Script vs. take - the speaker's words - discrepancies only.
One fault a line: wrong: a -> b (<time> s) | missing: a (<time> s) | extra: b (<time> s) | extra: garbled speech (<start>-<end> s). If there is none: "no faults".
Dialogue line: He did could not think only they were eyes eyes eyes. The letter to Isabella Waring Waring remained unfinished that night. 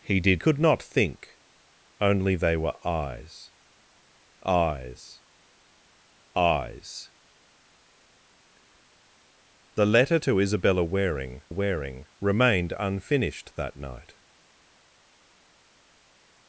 no faults